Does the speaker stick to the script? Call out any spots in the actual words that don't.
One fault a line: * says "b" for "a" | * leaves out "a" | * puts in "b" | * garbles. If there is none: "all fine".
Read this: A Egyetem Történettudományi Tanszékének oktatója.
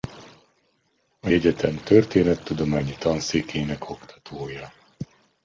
all fine